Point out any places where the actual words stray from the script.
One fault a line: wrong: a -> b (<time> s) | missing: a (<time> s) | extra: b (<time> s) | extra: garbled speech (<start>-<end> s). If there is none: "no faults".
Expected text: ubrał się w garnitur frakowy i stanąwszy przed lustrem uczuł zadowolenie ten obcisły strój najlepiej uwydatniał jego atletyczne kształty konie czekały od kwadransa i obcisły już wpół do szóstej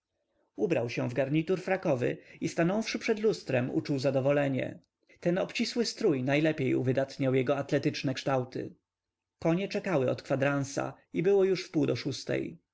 wrong: obcisły -> było (11.2 s)